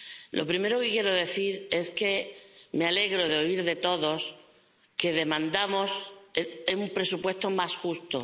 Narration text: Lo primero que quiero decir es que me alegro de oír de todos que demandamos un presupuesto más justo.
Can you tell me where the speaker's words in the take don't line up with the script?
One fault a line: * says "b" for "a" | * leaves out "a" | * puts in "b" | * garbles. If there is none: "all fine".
all fine